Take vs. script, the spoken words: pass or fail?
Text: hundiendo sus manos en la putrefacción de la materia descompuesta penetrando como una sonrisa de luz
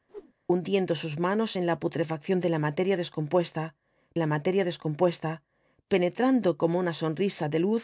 fail